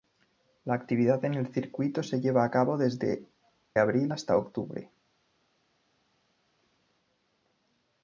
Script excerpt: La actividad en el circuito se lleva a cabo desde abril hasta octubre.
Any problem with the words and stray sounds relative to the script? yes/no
no